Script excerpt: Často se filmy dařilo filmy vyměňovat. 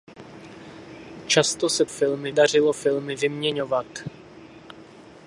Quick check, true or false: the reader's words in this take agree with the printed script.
true